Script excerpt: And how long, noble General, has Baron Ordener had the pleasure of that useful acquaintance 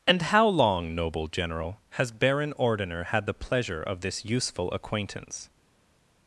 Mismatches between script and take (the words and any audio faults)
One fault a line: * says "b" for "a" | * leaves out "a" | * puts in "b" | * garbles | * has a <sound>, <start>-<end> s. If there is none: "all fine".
* says "this" for "that"